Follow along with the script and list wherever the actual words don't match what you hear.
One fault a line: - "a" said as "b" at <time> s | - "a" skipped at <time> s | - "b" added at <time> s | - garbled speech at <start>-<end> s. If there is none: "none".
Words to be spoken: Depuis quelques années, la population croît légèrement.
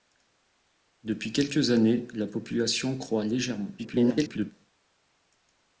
- garbled speech at 3.8-4.5 s